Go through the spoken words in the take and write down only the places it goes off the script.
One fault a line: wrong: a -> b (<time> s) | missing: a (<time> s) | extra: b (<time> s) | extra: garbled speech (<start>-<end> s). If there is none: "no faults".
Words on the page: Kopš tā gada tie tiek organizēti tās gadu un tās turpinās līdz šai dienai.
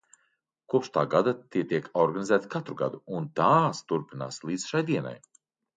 wrong: tās -> katru (2.6 s)